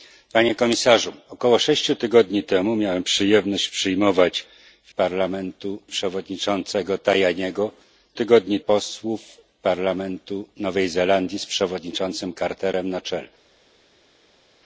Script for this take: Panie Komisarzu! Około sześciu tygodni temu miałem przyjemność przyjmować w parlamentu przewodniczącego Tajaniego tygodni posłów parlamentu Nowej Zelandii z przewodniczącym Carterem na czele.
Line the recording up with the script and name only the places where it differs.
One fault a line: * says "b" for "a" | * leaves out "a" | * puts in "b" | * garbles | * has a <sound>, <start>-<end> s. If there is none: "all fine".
all fine